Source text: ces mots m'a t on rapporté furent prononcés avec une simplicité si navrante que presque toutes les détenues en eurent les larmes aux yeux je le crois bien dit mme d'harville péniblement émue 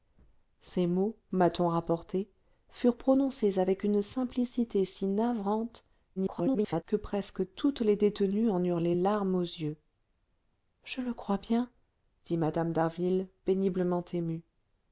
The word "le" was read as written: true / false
true